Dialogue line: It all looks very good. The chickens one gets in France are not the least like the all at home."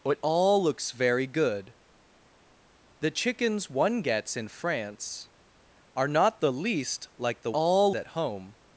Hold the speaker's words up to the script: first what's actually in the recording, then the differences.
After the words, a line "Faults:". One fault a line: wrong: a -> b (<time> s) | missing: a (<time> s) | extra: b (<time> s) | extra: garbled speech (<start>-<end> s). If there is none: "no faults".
It all looks very good. The chickens one gets in France are not the least like the all at home."
Faults:
no faults